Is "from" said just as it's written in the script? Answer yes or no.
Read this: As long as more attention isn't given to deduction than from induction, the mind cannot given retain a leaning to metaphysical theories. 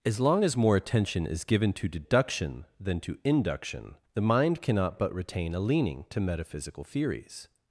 no